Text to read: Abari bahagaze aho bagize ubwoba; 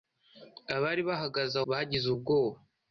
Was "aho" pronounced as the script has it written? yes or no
no